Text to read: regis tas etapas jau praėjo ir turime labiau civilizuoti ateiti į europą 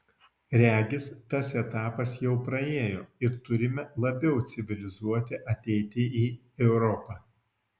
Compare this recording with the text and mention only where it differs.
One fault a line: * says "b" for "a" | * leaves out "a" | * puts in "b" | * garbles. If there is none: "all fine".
all fine